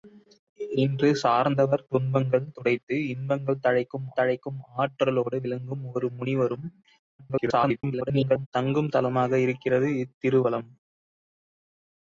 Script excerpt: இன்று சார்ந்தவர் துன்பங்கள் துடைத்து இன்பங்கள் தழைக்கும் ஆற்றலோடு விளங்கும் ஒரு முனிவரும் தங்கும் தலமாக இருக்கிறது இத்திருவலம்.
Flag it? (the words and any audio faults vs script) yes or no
yes